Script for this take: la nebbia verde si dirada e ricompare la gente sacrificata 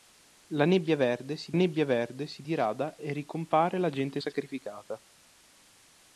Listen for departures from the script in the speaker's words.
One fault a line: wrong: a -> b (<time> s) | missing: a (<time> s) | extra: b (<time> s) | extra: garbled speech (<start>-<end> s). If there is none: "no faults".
extra: nebbia verde si (1.5 s)